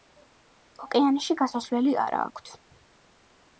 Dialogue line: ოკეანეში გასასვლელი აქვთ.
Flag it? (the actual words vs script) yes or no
yes